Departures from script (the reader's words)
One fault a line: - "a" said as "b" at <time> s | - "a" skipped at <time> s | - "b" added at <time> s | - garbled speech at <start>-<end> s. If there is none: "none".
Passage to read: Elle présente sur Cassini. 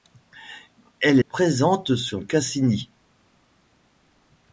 none